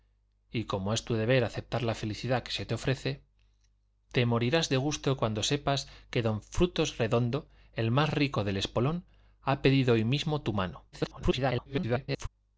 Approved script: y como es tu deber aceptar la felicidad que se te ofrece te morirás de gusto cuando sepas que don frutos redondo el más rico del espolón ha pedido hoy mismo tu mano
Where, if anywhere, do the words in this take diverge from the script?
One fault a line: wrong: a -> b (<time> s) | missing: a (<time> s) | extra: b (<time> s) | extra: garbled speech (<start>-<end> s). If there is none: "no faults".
extra: garbled speech (10.9-12.3 s)